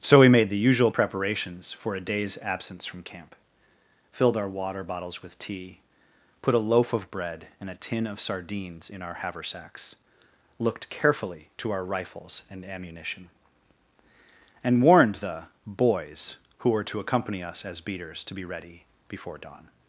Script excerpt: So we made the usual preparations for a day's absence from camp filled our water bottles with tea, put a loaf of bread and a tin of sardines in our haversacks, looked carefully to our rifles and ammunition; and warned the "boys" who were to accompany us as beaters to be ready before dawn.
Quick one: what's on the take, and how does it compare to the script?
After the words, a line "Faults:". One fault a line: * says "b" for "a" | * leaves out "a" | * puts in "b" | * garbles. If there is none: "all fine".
So we made the usual preparations for a day's absence from camp filled our water bottles with tea, put a loaf of bread and a tin of sardines in our haversacks, looked carefully to our rifles and ammunition; and warned the "boys" who were to accompany us as beaters to be ready before dawn.
Faults:
all fine